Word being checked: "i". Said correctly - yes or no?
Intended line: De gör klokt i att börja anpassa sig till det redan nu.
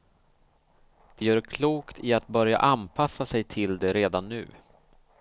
yes